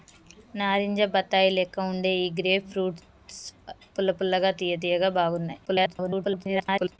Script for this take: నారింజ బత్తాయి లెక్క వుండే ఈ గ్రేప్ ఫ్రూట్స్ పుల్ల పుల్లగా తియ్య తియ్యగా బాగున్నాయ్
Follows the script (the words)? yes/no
no